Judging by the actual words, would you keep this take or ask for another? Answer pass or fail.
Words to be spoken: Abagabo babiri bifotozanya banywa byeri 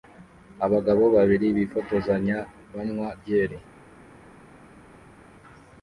pass